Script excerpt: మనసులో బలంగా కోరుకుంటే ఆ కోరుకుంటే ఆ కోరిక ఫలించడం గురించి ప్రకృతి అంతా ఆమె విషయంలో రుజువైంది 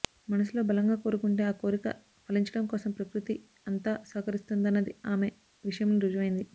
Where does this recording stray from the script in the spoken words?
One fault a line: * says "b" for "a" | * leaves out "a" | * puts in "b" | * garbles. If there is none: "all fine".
* leaves out "కోరుకుంటే ఆ"
* says "కోసం" for "గురించి"
* puts in "సహకరిస్తుందన్నది"